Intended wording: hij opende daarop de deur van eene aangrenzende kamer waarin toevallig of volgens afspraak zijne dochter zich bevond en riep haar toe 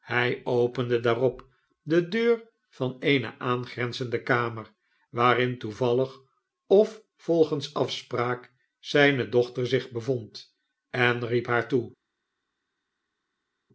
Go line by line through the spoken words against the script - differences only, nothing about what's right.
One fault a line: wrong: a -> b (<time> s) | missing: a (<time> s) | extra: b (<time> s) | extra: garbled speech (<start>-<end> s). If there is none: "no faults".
no faults